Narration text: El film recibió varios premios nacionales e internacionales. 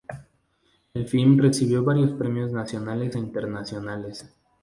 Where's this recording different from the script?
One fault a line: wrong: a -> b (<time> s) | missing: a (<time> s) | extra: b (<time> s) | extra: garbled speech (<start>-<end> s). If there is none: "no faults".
no faults